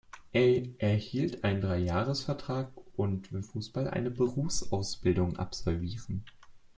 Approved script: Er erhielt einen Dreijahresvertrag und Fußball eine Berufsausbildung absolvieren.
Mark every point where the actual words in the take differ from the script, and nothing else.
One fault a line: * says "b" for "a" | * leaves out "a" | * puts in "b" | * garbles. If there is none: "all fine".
all fine